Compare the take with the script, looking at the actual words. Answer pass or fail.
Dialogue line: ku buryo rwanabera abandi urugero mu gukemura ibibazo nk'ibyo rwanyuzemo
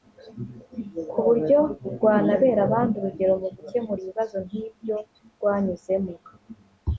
pass